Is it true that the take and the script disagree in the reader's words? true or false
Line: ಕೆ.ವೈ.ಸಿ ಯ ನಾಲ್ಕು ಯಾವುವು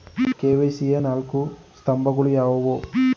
true